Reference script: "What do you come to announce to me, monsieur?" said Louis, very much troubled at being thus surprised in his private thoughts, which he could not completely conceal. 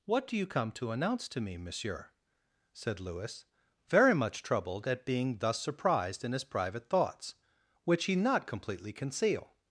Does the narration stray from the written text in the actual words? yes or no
yes